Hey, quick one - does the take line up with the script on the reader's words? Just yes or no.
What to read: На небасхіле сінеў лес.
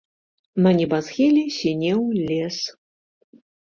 yes